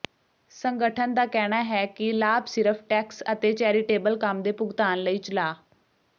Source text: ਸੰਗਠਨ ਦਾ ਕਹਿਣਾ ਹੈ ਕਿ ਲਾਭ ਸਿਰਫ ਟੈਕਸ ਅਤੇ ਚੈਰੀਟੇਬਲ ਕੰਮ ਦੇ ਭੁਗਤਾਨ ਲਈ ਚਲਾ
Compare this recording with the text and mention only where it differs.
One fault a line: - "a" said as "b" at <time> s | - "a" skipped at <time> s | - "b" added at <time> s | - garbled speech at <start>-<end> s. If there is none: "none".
none